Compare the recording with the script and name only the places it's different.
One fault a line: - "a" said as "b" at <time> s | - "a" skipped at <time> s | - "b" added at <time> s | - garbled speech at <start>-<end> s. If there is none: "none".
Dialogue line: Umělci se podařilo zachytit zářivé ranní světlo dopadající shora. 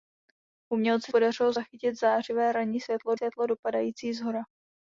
- "se" skipped at 1.1 s
- "světlo" added at 3.1 s